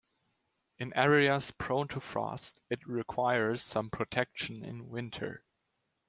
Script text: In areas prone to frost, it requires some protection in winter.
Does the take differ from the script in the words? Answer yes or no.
no